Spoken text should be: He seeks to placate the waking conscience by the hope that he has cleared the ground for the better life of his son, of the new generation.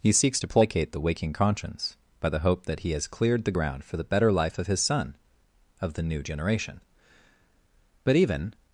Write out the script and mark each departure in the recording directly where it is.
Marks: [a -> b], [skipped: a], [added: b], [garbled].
He seeks to placate the waking conscience by the hope that he has cleared the ground for the better life of his son, of the new generation. [added: But even]